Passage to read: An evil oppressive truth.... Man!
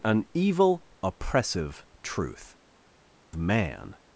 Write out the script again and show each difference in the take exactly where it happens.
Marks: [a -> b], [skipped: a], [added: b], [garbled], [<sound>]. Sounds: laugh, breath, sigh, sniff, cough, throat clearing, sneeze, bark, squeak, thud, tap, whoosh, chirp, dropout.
An evil oppressive truth.... Man!